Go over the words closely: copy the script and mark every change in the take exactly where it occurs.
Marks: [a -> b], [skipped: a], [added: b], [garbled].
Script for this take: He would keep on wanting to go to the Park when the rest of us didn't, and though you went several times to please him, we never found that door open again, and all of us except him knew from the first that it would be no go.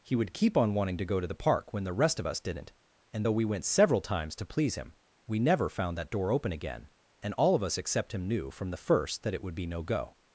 He would keep on wanting to go to the Park when the rest of us didn't, and though [you -> we] went several times to please him, we never found that door open again, and all of us except him knew from the first that it would be no go.